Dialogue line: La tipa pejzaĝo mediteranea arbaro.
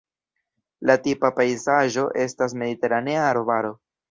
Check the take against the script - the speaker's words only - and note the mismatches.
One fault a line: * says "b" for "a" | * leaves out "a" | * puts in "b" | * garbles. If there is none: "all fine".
* puts in "estas"